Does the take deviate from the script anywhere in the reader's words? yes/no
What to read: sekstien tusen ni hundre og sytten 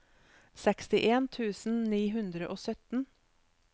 no